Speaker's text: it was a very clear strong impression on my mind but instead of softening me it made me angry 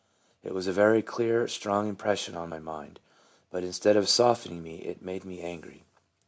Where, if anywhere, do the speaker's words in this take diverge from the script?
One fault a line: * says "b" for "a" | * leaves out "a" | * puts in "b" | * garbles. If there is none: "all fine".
all fine